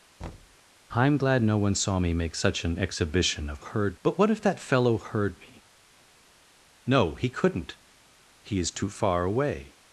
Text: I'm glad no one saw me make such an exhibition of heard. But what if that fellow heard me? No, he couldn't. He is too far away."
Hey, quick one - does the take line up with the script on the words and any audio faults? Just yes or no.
no